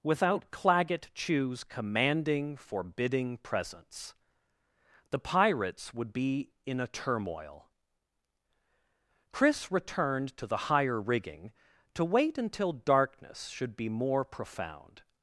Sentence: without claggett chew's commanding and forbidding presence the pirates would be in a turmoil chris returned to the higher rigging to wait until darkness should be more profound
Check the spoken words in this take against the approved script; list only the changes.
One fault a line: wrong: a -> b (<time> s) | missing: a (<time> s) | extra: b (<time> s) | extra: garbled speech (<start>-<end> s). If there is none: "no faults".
missing: and (2.6 s)